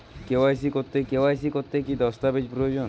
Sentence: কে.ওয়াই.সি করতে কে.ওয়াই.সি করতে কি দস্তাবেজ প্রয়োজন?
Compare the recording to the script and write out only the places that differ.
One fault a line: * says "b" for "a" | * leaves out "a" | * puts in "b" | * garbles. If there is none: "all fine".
all fine